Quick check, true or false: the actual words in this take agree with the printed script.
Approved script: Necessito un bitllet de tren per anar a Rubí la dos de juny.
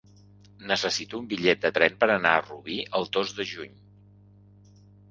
false